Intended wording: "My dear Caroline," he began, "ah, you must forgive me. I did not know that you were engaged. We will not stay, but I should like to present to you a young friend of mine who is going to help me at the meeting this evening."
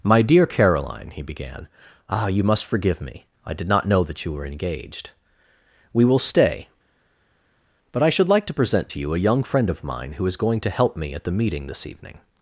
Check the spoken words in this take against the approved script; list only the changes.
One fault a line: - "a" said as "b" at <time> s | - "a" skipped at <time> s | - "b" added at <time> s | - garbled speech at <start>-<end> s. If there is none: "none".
- "not" skipped at 6.2 s